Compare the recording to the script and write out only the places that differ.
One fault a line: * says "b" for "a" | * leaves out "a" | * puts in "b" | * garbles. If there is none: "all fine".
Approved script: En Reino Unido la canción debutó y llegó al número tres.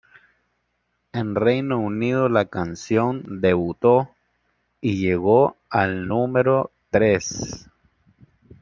all fine